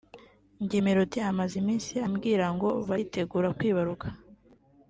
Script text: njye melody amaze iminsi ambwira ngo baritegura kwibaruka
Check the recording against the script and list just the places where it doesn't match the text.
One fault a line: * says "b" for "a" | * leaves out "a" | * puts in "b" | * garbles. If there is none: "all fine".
all fine